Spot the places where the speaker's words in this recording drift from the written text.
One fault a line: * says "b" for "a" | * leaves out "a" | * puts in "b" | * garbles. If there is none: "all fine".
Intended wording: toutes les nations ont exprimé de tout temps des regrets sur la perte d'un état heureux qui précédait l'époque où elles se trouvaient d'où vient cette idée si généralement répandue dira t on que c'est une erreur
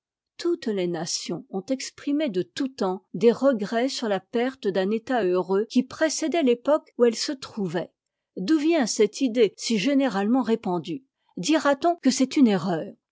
all fine